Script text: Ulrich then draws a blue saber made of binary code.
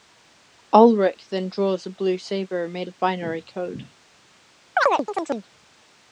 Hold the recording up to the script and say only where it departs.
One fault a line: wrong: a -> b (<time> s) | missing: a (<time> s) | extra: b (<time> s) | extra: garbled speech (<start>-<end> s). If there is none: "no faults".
no faults